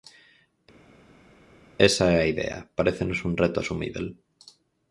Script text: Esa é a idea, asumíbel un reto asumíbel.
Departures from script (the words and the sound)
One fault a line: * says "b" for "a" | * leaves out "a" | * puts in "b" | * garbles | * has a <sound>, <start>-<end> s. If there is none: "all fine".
* says "parécenos" for "asumíbel"